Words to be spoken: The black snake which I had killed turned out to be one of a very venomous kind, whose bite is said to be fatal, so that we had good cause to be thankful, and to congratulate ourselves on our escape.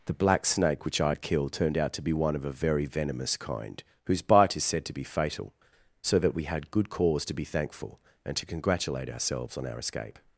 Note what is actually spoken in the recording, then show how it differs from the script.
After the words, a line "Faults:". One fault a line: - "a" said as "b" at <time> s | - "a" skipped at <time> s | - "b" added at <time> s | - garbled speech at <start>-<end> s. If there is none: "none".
The black snake which I had killed turned out to be one of a very venomous kind, whose bite is said to be fatal, so that we had good cause to be thankful, and to congratulate ourselves on our escape.
Faults:
none